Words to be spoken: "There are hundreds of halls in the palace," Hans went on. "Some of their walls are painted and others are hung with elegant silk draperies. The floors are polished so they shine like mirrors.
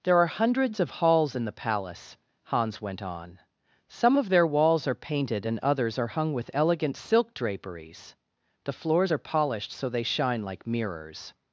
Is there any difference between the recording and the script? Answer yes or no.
no